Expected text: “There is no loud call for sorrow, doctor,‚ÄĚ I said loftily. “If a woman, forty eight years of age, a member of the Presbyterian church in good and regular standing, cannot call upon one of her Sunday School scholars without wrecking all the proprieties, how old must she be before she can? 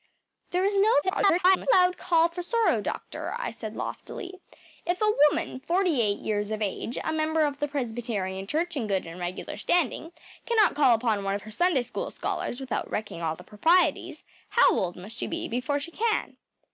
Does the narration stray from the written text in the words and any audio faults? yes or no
yes